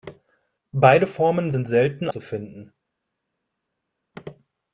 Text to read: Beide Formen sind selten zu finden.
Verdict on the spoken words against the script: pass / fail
pass